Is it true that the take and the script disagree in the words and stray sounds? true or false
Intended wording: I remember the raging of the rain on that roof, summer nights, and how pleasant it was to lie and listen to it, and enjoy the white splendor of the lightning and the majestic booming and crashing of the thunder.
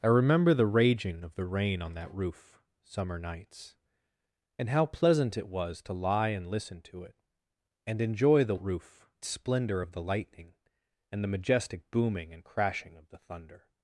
true